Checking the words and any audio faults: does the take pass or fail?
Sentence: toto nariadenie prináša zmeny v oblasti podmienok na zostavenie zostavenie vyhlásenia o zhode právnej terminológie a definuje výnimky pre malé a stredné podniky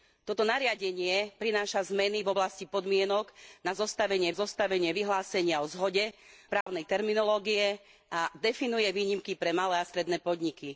fail